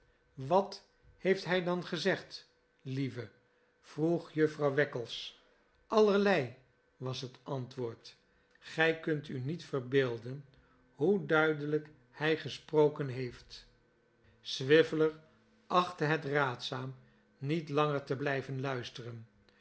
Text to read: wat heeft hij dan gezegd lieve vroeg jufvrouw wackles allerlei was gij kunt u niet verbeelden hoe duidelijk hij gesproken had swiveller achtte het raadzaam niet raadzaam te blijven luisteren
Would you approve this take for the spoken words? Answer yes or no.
no